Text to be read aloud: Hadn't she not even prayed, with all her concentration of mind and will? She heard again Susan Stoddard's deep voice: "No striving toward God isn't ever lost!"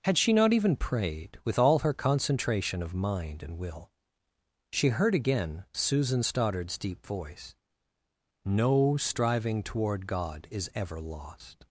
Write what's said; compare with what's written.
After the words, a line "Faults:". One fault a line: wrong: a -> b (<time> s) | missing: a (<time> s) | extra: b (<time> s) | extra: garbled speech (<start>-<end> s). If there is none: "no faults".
Had she not even prayed, with all her concentration of mind and will? She heard again Susan Stoddard's deep voice: "No striving toward God is ever lost!"
Faults:
wrong: Hadn't -> Had (0.0 s)
wrong: isn't -> is (10.5 s)